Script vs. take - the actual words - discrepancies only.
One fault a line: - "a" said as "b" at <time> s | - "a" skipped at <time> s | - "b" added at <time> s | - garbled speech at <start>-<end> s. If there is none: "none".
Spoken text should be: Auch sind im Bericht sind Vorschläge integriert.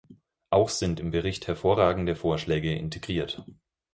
- "sind" said as "hervorragende" at 1.5 s